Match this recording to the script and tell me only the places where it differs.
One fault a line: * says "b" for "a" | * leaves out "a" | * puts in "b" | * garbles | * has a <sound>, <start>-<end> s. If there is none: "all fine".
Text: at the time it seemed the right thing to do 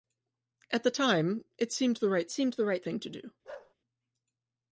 * puts in "seemed the right"
* has a bark, 3.4-3.7 s